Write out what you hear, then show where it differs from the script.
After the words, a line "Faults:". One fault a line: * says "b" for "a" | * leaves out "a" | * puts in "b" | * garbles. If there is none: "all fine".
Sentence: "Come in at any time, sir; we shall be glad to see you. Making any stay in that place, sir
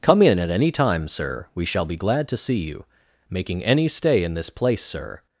"Come in at any time, sir; we shall be glad to see you. Making any stay in this place, sir
Faults:
* says "this" for "that"